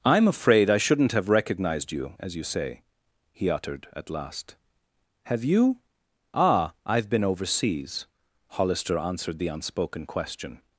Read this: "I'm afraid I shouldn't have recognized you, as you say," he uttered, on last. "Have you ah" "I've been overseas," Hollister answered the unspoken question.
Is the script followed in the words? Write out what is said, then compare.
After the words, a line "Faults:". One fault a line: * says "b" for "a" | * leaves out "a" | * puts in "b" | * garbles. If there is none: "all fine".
"I'm afraid I shouldn't have recognized you, as you say," he uttered, at last. "Have you ah" "I've been overseas," Hollister answered the unspoken question.
Faults:
* says "at" for "on"